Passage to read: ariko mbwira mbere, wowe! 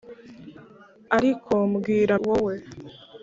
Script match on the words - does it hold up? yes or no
no